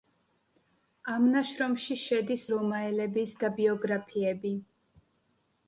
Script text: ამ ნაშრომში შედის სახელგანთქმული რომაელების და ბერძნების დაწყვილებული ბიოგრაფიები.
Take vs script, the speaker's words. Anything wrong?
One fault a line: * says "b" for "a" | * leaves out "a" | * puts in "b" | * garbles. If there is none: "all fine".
* leaves out "სახელგანთქმული"
* leaves out "ბერძნების დაწყვილებული"